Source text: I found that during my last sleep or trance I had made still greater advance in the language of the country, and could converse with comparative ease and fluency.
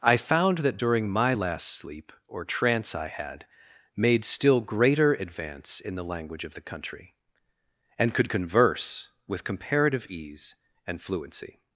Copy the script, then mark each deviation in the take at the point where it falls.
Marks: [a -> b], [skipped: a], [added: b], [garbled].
I found that during my last sleep or trance I had made still greater advance in the language of the country, and could converse with comparative ease and fluency.